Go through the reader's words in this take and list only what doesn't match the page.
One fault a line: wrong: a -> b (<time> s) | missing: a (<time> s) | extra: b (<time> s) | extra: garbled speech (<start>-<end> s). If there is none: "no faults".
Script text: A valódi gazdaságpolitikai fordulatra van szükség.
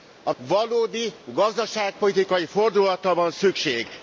no faults